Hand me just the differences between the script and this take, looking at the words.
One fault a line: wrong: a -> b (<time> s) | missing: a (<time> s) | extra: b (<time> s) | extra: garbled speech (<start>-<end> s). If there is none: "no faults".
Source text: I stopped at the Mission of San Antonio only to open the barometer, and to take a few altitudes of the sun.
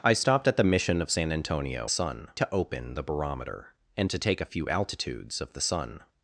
wrong: only -> sun (1.9 s)